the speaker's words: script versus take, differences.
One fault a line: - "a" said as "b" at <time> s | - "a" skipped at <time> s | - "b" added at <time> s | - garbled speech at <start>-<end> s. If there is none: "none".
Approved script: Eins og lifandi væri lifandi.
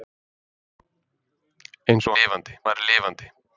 none